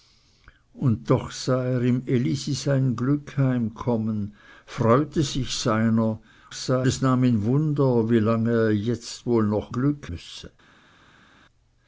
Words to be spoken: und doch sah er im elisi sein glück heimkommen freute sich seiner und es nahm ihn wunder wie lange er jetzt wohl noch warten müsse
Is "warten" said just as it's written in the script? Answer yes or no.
no